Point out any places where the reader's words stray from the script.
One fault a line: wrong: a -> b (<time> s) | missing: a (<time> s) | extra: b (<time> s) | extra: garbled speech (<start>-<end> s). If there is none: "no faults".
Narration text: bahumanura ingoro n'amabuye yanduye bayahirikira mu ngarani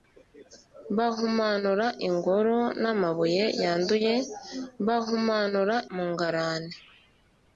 wrong: bayahirikira -> bahumanura (4.9 s)